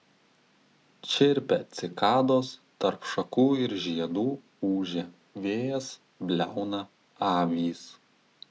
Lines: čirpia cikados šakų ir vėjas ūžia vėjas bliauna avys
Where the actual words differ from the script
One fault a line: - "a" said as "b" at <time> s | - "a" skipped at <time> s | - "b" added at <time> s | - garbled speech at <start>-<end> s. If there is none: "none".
- "tarp" added at 2.9 s
- "vėjas" said as "žiedų" at 3.9 s